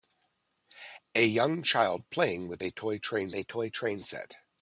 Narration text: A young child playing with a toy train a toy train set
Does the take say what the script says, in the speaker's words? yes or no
yes